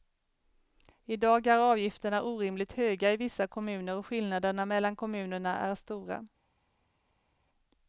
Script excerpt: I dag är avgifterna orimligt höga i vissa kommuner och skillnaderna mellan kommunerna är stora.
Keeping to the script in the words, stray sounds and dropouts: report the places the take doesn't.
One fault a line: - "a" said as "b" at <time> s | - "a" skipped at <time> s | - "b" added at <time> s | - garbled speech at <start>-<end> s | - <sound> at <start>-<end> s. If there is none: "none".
none